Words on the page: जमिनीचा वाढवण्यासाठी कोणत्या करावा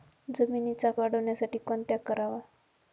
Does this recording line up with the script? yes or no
yes